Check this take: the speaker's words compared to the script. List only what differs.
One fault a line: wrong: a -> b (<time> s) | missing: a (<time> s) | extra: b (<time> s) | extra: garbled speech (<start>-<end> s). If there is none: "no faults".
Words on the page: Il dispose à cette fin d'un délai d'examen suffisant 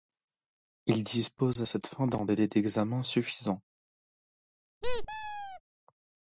no faults